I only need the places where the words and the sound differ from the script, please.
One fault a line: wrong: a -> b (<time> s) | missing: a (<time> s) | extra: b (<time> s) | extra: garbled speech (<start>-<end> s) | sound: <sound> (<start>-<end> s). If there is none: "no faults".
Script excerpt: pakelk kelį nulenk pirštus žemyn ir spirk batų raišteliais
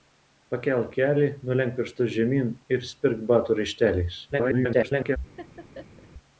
extra: garbled speech (4.3-5.2 s)
sound: laugh (5.4-6.1 s)